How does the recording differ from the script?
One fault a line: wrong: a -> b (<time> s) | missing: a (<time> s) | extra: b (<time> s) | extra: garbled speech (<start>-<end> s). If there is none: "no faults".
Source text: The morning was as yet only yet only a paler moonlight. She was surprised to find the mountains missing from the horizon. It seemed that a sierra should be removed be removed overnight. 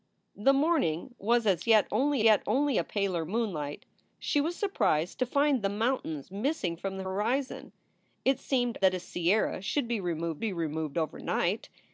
no faults